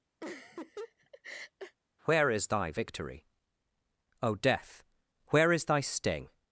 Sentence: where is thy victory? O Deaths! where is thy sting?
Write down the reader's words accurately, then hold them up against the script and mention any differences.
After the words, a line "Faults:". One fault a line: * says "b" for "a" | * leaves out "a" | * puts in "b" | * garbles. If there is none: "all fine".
where is thy victory? O Death! where is thy sting?
Faults:
* says "Death" for "Deaths"